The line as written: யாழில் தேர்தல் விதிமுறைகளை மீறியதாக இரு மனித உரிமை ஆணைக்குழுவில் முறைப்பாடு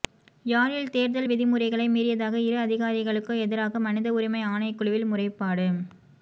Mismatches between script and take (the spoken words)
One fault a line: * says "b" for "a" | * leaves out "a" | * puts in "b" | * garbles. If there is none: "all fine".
* puts in "அதிகாரிகளுக்கு எதிராக"